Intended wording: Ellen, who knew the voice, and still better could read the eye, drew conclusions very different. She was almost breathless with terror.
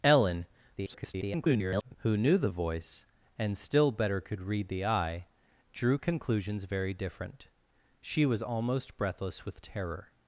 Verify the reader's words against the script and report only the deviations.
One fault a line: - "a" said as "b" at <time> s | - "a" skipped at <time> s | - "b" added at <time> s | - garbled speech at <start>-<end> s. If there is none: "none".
- garbled speech at 0.8-2.0 s